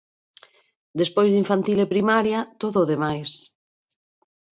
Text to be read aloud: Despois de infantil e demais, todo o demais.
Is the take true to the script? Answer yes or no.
no